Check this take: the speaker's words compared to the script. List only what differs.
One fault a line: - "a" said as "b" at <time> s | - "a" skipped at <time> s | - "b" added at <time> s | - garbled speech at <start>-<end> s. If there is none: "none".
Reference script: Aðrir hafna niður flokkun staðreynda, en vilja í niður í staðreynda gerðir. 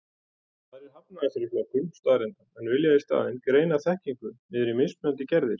- "niður" said as "þessari" at 1.2 s
- "staðinn greina þekkingu" added at 3.1 s
- "staðreynda" said as "mismunandi" at 4.8 s